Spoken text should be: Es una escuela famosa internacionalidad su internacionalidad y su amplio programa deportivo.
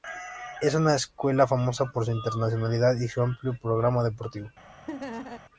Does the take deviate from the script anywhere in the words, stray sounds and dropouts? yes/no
yes